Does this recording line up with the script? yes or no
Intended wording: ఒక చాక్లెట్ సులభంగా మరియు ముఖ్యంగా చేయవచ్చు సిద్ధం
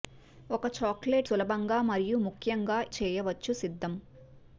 yes